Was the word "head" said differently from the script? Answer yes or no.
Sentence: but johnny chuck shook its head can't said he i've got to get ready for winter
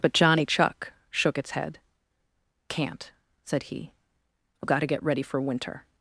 no